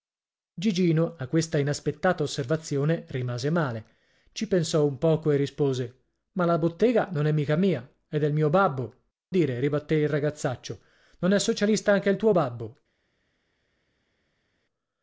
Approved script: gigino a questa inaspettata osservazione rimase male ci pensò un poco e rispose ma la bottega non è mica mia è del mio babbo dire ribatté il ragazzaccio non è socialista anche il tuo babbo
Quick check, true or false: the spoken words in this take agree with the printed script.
true